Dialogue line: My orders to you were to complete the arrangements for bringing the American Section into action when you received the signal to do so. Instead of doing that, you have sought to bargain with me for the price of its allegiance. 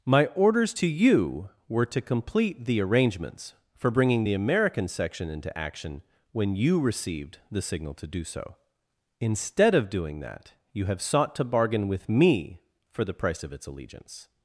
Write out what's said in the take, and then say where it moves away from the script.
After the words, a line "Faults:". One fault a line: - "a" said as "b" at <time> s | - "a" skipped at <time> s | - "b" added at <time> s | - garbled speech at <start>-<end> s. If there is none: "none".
My orders to you were to complete the arrangements for bringing the American Section into action when you received the signal to do so. Instead of doing that, you have sought to bargain with me for the price of its allegiance.
Faults:
none